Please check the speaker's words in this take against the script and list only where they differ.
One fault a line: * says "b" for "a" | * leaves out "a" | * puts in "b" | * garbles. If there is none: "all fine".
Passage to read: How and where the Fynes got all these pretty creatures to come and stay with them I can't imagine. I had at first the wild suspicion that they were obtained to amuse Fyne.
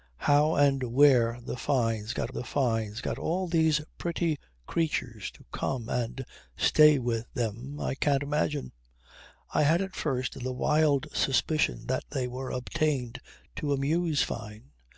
* puts in "the Fynes got"